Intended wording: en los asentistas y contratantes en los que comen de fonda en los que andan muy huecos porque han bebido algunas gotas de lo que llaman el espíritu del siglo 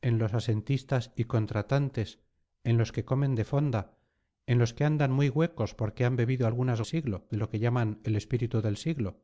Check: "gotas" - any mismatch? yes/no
yes